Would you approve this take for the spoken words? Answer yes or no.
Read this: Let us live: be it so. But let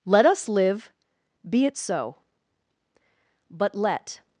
yes